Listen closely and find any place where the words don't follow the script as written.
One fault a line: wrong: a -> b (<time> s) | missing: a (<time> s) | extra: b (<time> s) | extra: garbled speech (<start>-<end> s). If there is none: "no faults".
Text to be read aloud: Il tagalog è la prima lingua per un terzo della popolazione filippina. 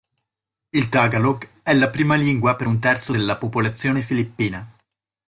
no faults